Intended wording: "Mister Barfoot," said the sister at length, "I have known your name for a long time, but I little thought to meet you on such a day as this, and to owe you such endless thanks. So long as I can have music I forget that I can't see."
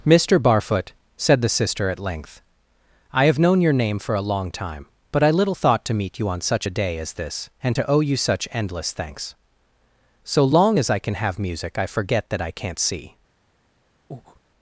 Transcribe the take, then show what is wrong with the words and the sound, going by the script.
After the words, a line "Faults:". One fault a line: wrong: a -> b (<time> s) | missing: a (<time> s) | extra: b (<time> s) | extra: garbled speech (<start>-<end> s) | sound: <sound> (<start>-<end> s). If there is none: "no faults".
"Mister Barfoot," said the sister at length, "I have known your name for a long time, but I little thought to meet you on such a day as this, and to owe you such endless thanks. So long as I can have music I forget that I can't see."
Faults:
sound: breath (14.1-14.4 s)